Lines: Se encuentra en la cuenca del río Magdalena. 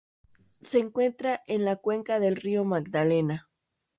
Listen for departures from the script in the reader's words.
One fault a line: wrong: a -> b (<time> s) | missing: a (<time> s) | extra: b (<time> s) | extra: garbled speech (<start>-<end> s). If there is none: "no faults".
no faults